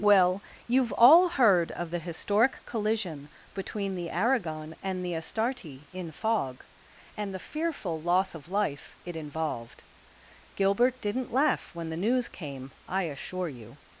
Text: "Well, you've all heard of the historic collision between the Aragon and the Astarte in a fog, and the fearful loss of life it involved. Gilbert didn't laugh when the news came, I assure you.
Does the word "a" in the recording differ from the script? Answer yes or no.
yes